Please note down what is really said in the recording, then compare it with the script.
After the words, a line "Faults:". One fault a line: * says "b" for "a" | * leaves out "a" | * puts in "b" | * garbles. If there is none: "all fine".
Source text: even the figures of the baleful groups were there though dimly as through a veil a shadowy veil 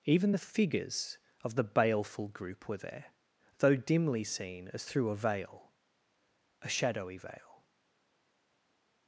even the figures of the baleful group were there though dimly seen as through a veil a shadowy veil
Faults:
* says "group" for "groups"
* puts in "seen"